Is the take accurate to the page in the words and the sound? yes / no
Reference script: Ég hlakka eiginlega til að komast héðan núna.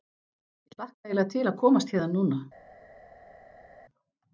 yes